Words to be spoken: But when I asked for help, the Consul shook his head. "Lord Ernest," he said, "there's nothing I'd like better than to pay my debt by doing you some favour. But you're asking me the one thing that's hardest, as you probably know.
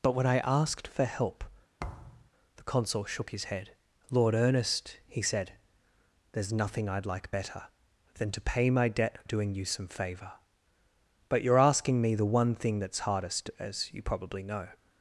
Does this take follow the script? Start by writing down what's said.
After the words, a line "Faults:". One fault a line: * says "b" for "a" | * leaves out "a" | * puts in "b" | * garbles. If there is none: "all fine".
But when I asked for help, the Consul shook his head. "Lord Ernest," he said, "there's nothing I'd like better than to pay my debt doing you some favour. But you're asking me the one thing that's hardest, as you probably know.
Faults:
* leaves out "by"